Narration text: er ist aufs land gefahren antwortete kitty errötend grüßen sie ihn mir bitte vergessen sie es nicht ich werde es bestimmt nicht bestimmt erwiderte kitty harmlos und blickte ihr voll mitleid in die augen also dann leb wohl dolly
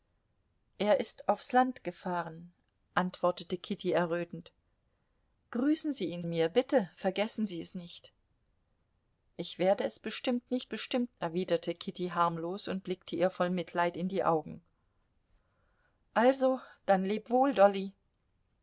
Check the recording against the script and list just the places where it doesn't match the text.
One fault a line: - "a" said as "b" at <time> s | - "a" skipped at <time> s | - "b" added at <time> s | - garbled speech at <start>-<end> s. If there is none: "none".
none